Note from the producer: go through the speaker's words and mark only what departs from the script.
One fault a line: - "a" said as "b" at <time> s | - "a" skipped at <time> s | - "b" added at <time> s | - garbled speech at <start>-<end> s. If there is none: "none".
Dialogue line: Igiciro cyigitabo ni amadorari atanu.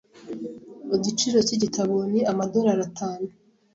none